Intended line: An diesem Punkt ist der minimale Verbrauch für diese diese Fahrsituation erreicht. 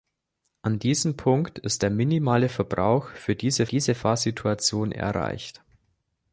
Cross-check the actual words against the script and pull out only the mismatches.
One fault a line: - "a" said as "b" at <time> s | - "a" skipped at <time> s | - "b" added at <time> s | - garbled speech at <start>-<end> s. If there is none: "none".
none